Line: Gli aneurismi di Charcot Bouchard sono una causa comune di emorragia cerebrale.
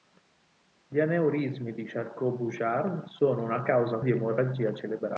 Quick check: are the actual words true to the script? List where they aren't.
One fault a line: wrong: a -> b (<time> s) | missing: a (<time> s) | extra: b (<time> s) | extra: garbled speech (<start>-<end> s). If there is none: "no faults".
missing: comune (4.0 s)